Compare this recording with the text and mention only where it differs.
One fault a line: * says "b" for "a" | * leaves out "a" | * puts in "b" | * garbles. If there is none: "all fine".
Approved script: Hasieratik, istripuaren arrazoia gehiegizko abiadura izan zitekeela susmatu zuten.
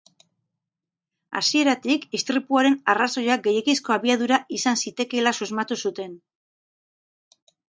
all fine